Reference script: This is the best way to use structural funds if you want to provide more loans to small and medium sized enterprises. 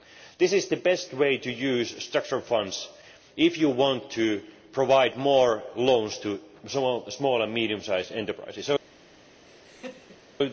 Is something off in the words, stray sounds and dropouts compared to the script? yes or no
yes